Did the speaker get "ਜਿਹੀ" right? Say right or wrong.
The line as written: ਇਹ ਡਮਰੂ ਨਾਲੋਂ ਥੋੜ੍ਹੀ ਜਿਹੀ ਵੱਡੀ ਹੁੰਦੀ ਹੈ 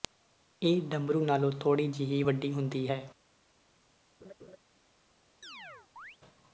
right